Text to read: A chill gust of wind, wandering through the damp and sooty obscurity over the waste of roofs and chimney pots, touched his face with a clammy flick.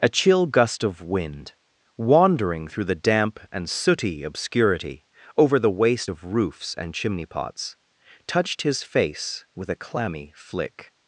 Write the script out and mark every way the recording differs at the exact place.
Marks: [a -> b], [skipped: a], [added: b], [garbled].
A chill gust of wind, wandering through the damp and sooty obscurity over the waste of roofs and chimney pots, touched his face with a clammy flick.